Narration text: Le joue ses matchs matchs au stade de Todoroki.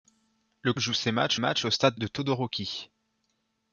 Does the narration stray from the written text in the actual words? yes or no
no